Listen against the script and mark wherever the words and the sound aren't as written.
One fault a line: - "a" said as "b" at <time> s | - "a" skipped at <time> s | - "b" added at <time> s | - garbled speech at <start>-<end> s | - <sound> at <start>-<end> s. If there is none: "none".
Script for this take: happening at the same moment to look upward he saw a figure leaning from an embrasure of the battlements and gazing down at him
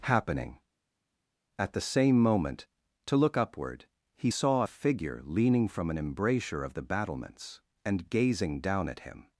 none